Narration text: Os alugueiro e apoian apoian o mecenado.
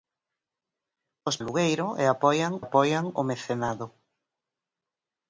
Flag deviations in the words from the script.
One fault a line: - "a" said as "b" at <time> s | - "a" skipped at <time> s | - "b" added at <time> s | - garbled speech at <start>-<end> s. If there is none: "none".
none